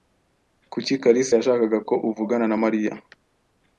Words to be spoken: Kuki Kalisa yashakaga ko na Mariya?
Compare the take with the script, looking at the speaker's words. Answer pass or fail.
fail